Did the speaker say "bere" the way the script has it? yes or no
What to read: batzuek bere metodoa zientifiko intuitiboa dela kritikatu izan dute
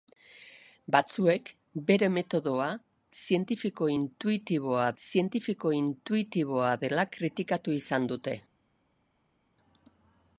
yes